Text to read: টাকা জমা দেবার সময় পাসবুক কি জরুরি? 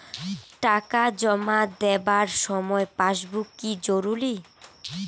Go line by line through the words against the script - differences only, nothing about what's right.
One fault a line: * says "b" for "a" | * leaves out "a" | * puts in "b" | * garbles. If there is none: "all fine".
all fine